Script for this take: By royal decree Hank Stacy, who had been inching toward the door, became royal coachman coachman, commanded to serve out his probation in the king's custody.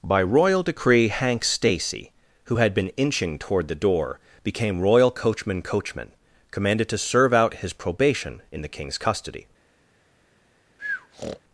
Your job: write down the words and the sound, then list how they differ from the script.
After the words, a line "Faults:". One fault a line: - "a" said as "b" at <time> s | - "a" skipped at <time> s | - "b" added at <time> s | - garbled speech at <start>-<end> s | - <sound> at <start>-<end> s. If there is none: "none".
By royal decree Hank Stacy, who had been inching toward the door, became royal coachman coachman, commanded to serve out his probation in the king's custody.
Faults:
- breath at 10.8-11.4 s